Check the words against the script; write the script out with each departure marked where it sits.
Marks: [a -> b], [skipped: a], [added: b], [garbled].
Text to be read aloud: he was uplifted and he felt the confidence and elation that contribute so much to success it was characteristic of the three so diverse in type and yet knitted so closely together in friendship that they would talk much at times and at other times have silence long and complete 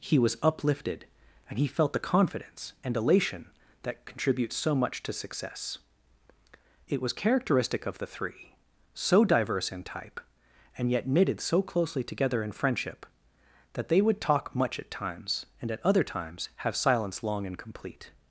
he was uplifted and he felt the confidence and elation that contribute so much to success it was characteristic of the three so diverse in type and yet knitted so closely together in friendship that they would talk much at times and at other times have silence long and complete